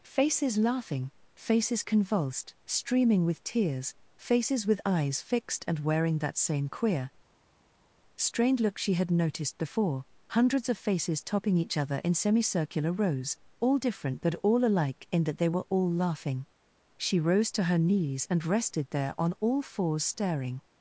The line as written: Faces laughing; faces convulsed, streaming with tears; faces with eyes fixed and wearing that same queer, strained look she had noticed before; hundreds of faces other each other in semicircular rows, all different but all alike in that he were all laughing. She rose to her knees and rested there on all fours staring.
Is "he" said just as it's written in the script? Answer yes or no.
no